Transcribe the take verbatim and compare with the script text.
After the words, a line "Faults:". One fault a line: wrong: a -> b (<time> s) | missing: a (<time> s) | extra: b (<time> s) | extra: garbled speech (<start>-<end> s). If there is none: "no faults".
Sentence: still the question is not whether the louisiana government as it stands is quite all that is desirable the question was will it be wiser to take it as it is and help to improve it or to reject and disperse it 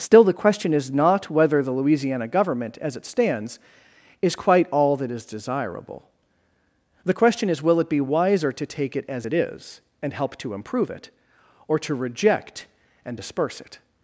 still the question is not whether the louisiana government as it stands is quite all that is desirable the question is will it be wiser to take it as it is and help to improve it or to reject and disperse it
Faults:
wrong: was -> is (7.5 s)